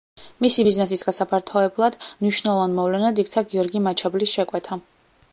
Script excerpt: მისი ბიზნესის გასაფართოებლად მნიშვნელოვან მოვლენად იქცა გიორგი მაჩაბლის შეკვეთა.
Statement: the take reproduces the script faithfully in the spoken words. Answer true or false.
true